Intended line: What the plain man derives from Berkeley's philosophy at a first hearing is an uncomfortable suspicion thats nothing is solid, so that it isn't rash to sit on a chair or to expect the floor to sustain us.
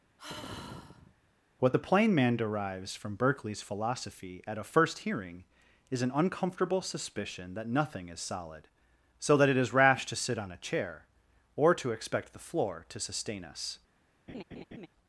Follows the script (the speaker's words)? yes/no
no